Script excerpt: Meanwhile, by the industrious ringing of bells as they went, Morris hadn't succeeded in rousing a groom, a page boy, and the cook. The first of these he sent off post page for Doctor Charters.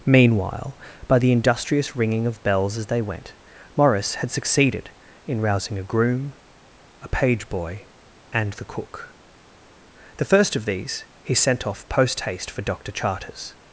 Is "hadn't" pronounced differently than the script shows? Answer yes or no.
yes